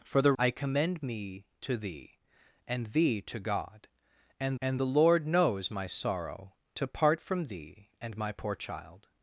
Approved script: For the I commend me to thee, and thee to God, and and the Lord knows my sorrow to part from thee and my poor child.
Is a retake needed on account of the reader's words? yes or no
no